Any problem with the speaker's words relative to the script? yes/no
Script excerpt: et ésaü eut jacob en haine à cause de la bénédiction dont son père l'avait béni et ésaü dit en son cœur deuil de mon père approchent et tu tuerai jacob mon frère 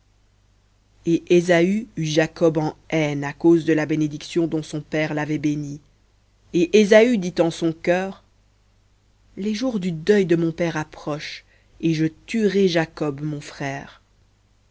yes